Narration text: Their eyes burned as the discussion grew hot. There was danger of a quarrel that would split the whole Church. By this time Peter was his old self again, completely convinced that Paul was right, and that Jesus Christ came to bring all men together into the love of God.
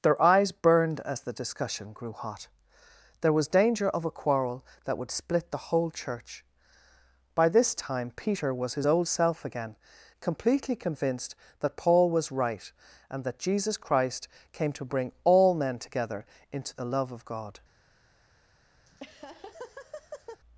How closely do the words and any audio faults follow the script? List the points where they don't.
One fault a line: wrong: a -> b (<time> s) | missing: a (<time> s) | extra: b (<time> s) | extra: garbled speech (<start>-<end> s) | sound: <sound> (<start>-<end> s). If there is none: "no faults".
sound: laugh (18.9-20.4 s)